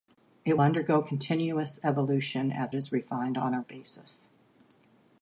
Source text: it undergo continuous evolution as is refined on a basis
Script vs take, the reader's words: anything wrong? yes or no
no